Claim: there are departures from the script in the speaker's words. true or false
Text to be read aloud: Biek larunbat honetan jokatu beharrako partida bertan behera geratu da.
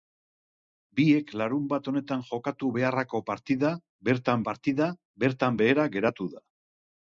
true